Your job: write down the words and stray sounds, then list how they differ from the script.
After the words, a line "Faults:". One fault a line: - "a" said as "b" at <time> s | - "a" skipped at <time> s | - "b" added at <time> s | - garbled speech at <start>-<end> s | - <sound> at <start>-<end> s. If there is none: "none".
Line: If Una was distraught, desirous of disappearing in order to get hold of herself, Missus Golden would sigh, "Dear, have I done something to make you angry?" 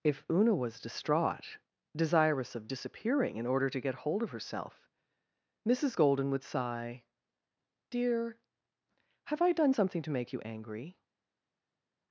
If Una was distraught, desirous of disappearing in order to get hold of herself, Missus Golden would sigh, "Dear, have I done something to make you angry?"
Faults:
none